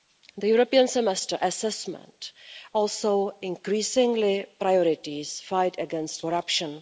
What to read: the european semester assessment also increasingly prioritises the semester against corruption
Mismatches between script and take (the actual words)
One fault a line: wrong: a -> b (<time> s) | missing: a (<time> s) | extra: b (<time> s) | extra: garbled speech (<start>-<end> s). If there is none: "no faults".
wrong: semester -> fight (5.5 s)